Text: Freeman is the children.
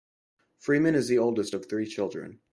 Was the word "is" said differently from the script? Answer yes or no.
no